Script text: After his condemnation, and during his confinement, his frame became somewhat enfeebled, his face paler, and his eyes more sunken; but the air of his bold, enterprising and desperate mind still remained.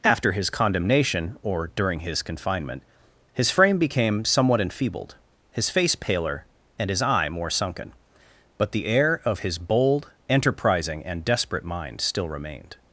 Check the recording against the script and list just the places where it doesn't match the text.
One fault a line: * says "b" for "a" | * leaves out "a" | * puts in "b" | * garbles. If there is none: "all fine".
* says "or" for "and"
* says "eye" for "eyes"